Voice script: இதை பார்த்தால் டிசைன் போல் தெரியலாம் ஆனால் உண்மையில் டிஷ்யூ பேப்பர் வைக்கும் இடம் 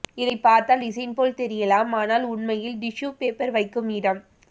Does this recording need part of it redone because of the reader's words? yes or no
no